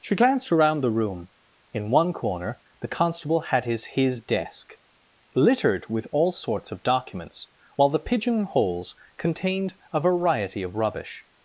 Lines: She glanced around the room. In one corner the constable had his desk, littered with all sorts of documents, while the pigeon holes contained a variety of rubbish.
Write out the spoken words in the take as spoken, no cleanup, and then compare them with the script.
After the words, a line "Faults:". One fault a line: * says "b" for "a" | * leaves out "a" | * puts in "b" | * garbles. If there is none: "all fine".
She glanced around the room. In one corner the constable had his his desk, littered with all sorts of documents, while the pigeon holes contained a variety of rubbish.
Faults:
* puts in "his"